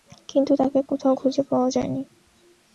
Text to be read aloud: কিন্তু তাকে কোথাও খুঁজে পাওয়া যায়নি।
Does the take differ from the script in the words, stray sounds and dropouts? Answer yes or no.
no